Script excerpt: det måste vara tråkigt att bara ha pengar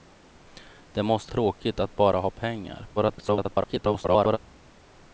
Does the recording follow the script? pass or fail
fail